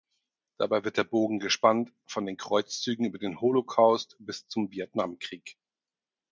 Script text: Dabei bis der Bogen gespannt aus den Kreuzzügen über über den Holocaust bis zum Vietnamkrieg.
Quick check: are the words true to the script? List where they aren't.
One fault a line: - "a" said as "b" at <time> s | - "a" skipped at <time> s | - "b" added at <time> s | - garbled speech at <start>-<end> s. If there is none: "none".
- "bis" said as "wird" at 0.8 s
- "aus" said as "von" at 2.1 s
- "über" skipped at 3.2 s